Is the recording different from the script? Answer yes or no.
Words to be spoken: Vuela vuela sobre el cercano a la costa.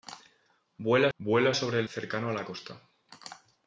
no